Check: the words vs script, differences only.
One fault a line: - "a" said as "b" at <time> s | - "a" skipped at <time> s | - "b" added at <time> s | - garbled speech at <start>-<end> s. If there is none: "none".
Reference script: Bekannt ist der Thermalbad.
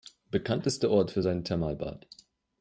- "Ort für sein" added at 0.9 s